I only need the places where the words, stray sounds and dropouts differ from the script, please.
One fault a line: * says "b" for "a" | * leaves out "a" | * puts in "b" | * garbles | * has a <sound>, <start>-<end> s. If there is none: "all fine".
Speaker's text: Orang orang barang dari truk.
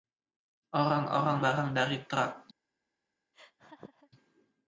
* has a laugh, 3.3-4.1 s